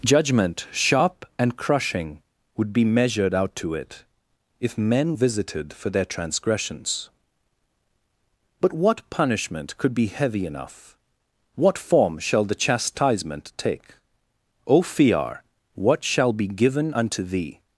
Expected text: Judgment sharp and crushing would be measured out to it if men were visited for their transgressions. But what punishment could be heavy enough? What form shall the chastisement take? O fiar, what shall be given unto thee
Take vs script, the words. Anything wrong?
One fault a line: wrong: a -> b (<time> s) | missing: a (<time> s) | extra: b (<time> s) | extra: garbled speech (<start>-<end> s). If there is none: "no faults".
missing: were (5.1 s)